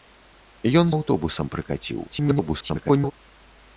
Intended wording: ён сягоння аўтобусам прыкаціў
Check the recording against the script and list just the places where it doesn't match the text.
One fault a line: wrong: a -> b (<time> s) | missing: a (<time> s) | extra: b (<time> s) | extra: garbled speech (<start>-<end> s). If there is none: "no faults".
missing: сягоння (0.9 s)
extra: garbled speech (2.1-3.1 s)